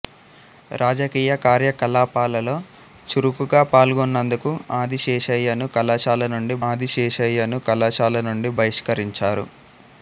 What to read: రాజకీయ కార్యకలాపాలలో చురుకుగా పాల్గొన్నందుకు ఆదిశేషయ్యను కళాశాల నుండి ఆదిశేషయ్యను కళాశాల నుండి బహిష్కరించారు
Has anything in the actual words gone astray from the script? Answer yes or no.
no